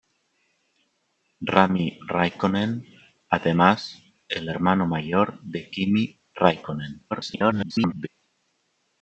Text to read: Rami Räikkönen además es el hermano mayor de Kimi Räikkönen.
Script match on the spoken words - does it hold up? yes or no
no